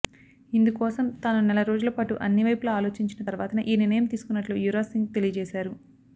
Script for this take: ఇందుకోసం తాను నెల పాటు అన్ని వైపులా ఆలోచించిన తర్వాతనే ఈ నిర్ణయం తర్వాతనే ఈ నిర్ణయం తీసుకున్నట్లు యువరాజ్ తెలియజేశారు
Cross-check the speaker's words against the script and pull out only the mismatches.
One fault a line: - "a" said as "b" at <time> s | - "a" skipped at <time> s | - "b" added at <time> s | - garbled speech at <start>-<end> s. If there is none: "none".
- "రోజుల" added at 1.7 s
- "తర్వాతనే ఈ నిర్ణయం" skipped at 4.1 s
- "సింగ్" added at 4.9 s